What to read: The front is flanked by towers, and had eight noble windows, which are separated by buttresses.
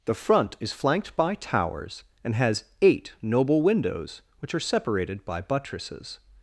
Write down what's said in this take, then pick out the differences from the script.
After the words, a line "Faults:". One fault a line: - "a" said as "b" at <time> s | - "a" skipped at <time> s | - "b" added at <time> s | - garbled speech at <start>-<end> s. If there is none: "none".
The front is flanked by towers, and has eight noble windows, which are separated by buttresses.
Faults:
- "had" said as "has" at 2.4 s